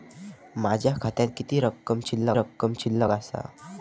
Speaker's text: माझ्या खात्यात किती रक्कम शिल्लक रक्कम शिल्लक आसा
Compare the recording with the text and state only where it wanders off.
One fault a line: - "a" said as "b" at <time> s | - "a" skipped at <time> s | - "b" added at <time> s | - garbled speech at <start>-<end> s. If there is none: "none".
none